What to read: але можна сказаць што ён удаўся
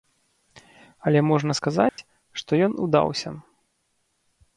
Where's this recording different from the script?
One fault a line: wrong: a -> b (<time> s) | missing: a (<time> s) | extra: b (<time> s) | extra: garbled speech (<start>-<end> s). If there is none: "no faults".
no faults